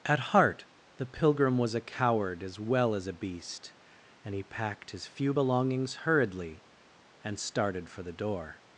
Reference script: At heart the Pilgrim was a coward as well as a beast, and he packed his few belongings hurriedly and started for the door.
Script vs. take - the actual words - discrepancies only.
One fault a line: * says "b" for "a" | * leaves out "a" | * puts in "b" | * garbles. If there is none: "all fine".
all fine